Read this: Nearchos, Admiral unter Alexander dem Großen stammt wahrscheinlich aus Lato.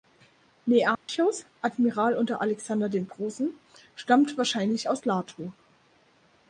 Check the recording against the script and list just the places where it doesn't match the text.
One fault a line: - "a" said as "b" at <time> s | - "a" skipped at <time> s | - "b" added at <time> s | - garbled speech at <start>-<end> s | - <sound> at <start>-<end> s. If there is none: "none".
- dropout at 0.9-1.1 s